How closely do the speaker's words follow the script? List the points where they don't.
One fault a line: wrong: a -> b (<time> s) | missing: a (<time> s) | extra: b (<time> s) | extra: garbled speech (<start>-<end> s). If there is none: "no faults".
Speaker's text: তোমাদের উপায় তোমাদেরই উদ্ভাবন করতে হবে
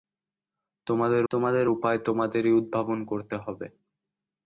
extra: তোমাদের (1.3 s)